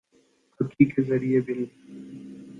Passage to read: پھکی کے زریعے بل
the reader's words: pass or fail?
pass